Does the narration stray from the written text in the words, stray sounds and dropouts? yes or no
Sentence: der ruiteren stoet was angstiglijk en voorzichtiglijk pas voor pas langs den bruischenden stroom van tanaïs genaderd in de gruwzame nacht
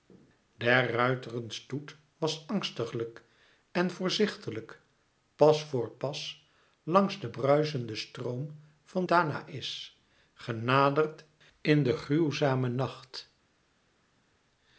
no